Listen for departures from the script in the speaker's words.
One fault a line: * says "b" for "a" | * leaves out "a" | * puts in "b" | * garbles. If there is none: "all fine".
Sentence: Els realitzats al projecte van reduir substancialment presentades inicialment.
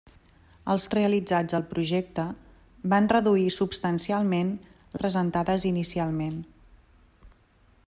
all fine